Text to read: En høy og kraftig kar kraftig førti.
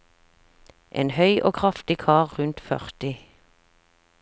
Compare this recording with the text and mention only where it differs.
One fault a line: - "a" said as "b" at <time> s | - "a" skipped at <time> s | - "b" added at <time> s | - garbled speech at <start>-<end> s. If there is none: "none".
- "kraftig" said as "rundt" at 2.4 s